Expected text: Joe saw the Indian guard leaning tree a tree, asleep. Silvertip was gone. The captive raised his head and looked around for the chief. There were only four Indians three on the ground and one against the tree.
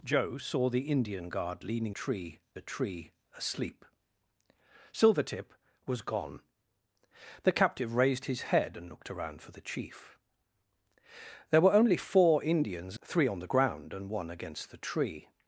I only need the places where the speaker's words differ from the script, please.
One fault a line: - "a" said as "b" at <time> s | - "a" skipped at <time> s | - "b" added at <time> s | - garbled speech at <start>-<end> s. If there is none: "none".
none